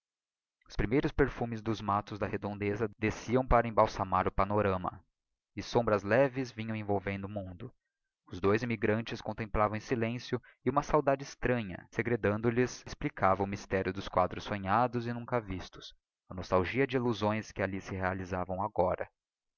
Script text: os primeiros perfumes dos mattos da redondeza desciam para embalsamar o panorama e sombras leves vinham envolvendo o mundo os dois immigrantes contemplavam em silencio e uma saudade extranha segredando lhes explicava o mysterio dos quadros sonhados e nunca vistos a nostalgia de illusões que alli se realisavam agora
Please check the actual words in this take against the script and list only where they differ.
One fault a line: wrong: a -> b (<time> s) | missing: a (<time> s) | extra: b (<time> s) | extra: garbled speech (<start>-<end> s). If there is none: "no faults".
no faults